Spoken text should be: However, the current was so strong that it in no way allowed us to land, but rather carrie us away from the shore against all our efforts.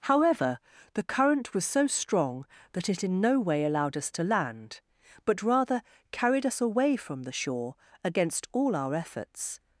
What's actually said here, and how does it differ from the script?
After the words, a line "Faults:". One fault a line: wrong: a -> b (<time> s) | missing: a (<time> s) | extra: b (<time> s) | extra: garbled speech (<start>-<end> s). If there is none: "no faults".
However, the current was so strong that it in no way allowed us to land, but rather carried us away from the shore against all our efforts.
Faults:
wrong: carrie -> carried (6.1 s)